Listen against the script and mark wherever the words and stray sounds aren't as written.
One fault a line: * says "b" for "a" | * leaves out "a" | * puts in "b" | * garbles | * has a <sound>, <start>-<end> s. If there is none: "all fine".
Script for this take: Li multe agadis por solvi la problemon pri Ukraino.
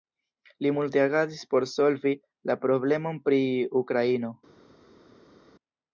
all fine